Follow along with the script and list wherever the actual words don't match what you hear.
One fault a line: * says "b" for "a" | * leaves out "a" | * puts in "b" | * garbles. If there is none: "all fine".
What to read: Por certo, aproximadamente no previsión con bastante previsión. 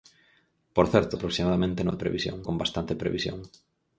all fine